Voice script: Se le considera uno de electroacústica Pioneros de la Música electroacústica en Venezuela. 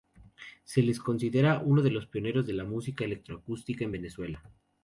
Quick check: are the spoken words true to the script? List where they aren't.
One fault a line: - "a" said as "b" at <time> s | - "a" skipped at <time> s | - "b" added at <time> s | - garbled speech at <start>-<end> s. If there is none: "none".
- "electroacústica" said as "los" at 1.9 s